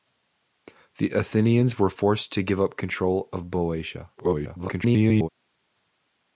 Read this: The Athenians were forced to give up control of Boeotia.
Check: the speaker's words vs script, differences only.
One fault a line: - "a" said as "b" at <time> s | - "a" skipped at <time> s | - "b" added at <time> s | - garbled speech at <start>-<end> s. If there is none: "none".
- garbled speech at 4.2-5.3 s